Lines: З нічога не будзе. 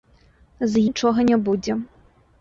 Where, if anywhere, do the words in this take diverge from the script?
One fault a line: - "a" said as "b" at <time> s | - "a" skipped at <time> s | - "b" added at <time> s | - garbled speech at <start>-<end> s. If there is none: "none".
none